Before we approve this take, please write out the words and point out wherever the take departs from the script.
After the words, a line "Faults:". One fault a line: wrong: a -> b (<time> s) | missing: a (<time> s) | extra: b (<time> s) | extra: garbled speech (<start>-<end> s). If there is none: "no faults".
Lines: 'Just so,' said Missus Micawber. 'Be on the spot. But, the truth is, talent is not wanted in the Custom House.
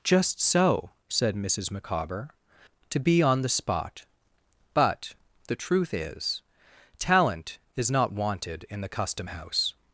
'Just so,' said Missus Micawber. 'To be on the spot. But, the truth is, talent is not wanted in the Custom House.
Faults:
extra: To (2.9 s)